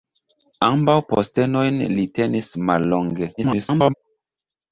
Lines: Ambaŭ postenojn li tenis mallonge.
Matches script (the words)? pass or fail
fail